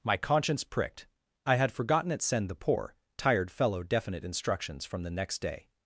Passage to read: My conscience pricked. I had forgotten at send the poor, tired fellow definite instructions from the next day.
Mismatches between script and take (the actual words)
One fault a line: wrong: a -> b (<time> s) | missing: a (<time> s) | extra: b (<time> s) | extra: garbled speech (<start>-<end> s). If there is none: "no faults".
no faults